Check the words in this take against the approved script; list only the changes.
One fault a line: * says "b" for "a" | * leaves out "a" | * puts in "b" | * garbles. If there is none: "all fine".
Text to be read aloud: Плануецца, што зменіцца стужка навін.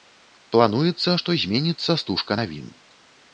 all fine